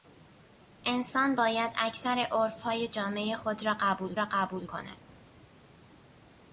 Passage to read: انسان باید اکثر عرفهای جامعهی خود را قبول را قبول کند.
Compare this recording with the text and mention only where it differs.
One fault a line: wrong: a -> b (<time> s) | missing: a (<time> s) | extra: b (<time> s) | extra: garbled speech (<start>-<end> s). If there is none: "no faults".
no faults